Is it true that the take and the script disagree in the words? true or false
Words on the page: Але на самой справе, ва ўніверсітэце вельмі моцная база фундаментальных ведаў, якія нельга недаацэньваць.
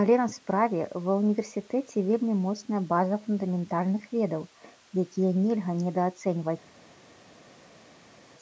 true